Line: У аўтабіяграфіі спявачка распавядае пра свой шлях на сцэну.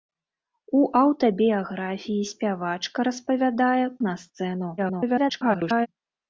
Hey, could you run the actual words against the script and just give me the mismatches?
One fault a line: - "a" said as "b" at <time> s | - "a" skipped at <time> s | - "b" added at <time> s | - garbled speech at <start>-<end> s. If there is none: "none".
- "пра свой шлях" skipped at 3.9 s
- garbled speech at 4.8-5.9 s